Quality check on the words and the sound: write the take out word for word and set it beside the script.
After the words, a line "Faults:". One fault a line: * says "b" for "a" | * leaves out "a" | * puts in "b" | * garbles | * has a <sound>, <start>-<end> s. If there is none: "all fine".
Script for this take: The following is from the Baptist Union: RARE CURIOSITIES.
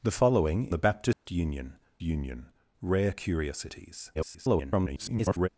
The following the Baptist Union Union: RARE CURIOSITIES. [garbled]
Faults:
* leaves out "is from"
* has a dropout, 1.1-1.3 s
* puts in "Union"
* garbles